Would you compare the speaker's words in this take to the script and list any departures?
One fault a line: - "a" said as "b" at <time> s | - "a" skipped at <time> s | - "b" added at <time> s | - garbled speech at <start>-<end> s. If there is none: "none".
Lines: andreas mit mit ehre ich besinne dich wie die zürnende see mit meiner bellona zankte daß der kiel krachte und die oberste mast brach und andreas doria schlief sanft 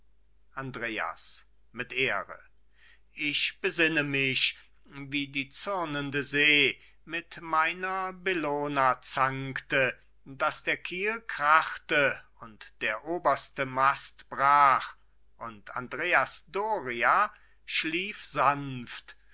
- "mit" skipped at 1.9 s
- "dich" said as "mich" at 4.0 s
- "die" said as "der" at 12.8 s